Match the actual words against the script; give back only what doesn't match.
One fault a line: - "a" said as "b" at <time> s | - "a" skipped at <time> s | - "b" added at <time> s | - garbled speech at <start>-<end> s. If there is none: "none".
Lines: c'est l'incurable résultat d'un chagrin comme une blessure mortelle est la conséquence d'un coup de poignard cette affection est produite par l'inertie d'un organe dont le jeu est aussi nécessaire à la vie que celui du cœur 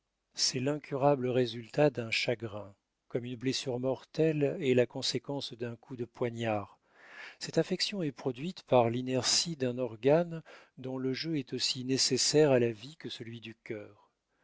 none